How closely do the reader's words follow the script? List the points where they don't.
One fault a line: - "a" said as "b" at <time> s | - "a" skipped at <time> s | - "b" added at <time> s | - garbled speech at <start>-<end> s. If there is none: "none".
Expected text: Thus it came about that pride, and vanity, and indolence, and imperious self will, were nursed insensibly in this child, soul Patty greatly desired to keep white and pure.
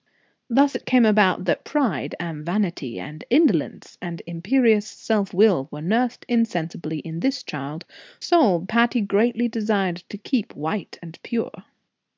none